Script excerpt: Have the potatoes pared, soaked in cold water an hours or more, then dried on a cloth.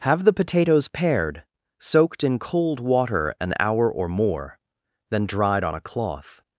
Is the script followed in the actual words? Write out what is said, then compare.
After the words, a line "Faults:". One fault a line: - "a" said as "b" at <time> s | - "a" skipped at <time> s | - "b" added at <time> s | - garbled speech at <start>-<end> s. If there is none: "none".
Have the potatoes pared, soaked in cold water an hour or more, then dried on a cloth.
Faults:
- "hours" said as "hour" at 3.6 s